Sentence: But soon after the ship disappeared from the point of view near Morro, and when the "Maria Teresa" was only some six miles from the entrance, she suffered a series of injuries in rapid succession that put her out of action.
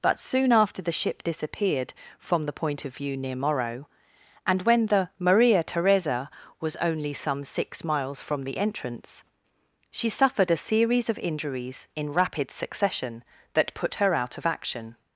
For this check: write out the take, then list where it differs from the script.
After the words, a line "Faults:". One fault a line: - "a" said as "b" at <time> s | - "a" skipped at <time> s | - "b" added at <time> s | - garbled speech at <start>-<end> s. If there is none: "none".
But soon after the ship disappeared from the point of view near Morro, and when the "Maria Teresa" was only some six miles from the entrance, she suffered a series of injuries in rapid succession that put her out of action.
Faults:
none